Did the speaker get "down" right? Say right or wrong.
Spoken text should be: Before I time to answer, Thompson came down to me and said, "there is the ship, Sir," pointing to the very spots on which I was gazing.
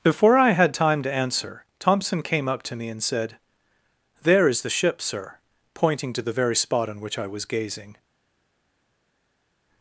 wrong